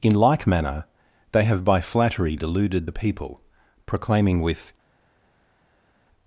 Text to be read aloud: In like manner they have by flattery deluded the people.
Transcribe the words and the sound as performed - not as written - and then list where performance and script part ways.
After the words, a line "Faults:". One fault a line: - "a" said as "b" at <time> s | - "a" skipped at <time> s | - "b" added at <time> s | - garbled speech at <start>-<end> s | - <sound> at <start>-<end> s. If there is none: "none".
In like manner they have by flattery deluded the people. Proclaiming with
Faults:
- "Proclaiming with" added at 3.9 s